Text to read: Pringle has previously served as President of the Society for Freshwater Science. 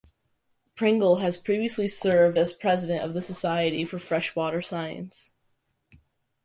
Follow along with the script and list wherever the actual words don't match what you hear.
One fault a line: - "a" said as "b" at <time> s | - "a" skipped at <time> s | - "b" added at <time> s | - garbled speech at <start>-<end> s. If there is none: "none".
none